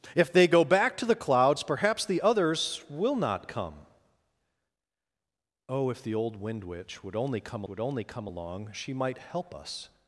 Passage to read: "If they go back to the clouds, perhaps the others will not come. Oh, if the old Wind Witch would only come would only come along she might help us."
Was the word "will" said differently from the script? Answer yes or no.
no